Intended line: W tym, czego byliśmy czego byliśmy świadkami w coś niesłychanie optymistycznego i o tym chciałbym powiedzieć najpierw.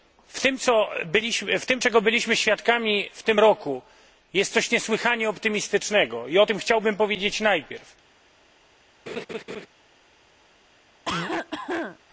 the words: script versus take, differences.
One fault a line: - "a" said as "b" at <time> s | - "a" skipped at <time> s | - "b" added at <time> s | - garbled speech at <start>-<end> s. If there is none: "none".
- "czego byliśmy świadkami w" said as "świadkami w tym roku jest" at 2.4 s